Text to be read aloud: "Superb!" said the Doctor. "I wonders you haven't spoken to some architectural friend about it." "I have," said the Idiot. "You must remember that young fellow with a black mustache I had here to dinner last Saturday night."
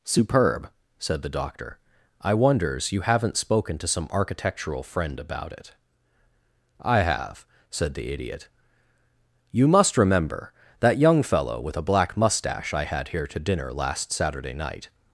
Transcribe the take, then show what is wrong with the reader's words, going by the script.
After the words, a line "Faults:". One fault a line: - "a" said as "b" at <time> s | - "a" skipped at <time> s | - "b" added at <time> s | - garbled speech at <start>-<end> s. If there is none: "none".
"Superb!" said the Doctor. "I wonders you haven't spoken to some architectural friend about it." "I have," said the Idiot. "You must remember that young fellow with a black mustache I had here to dinner last Saturday night."
Faults:
none